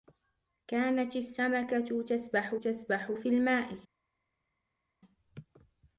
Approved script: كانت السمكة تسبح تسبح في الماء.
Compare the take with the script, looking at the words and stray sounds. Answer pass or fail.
pass